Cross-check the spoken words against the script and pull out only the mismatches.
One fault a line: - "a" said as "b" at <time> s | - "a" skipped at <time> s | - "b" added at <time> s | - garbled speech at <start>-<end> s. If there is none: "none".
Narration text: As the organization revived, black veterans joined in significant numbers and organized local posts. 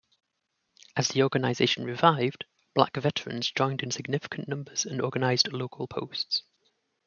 none